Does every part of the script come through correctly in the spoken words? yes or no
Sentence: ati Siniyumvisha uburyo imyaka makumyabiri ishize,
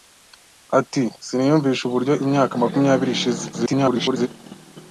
no